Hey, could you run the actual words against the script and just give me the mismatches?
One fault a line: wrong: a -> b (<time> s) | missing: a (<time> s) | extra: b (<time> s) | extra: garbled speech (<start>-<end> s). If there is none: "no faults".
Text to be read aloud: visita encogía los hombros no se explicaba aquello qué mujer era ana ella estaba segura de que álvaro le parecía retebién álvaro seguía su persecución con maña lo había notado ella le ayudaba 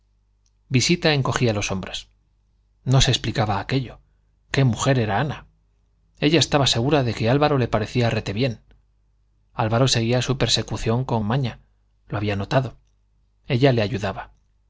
no faults